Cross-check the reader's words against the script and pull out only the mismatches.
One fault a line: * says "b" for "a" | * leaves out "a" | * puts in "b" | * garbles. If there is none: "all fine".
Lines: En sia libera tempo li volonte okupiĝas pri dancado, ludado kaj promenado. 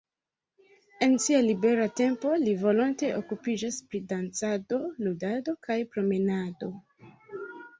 all fine